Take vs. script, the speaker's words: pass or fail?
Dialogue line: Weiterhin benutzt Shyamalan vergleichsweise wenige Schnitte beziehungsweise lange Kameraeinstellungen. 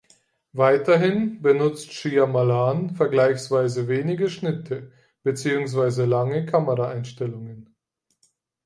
pass